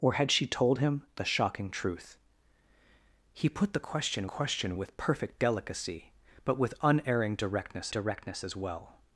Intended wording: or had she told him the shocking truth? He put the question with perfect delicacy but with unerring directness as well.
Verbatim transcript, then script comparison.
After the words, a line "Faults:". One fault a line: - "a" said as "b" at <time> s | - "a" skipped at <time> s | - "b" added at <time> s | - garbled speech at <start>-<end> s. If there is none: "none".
or had she told him the shocking truth? He put the question question with perfect delicacy but with unerring directness directness as well.
Faults:
- "question" added at 4.2 s
- "directness" added at 7.9 s